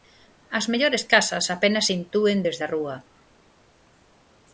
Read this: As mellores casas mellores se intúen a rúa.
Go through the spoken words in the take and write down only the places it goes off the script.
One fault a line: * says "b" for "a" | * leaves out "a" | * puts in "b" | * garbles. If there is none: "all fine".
* says "apenas" for "mellores"
* puts in "desde"